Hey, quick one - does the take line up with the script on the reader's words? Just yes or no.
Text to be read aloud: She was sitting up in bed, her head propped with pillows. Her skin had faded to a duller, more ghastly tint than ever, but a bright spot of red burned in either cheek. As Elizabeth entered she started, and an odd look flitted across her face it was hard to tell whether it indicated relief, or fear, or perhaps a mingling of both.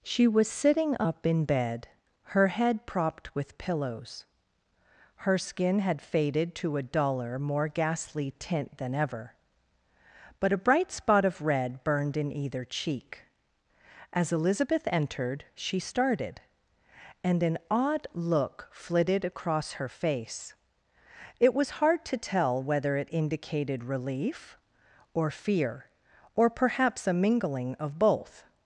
yes